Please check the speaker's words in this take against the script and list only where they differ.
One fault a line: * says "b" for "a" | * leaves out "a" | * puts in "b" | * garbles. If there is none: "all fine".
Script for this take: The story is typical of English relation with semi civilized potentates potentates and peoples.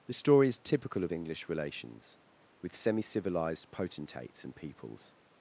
* says "relations" for "relation"
* leaves out "potentates"